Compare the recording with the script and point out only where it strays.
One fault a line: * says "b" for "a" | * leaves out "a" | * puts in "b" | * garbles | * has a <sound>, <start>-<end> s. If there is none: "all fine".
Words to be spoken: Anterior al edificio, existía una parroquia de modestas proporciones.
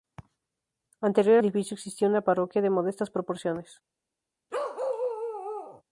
* leaves out "al"
* has a bark, 4.5-5.8 s